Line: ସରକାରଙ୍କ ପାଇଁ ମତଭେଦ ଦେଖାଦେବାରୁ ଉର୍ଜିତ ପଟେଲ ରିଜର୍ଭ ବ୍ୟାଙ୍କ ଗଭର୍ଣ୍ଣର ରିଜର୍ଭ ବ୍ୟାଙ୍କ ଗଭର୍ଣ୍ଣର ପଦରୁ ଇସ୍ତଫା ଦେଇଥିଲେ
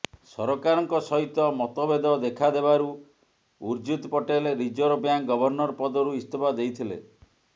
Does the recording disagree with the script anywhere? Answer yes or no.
yes